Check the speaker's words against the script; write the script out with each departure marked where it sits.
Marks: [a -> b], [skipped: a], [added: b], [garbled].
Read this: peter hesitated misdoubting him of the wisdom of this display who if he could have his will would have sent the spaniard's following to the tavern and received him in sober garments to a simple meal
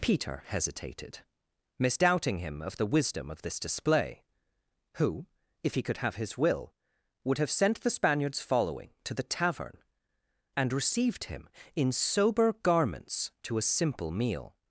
peter hesitated misdoubting him of the wisdom of this display who if he could have his will would have sent the spaniard's following to the tavern and received him in sober garments to a simple meal